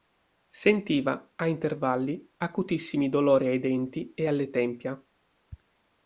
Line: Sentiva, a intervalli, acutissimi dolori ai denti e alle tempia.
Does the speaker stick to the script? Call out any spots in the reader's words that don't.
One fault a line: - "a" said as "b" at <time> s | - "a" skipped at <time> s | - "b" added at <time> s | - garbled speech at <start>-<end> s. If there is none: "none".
none